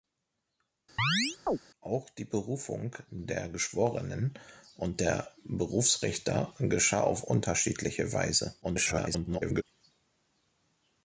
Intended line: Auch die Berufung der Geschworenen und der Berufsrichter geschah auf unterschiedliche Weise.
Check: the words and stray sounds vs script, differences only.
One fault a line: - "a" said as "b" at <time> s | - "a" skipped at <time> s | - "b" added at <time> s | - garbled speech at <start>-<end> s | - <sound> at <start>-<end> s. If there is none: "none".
- chirp at 1.0-1.6 s
- garbled speech at 8.6-9.6 s